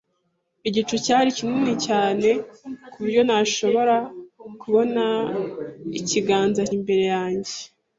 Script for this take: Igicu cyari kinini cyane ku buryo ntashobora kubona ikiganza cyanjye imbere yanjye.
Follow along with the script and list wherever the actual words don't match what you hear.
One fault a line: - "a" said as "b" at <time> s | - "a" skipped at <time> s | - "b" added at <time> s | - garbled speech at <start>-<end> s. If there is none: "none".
- "cyanjye" skipped at 6.6 s